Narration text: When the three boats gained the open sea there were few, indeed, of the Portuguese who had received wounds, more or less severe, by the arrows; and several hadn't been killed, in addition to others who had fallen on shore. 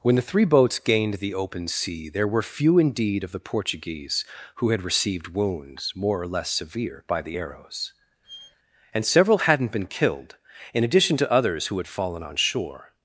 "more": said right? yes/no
yes